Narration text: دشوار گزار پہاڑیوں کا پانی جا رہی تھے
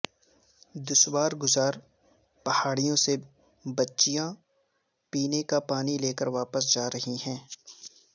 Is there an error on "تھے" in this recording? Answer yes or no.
yes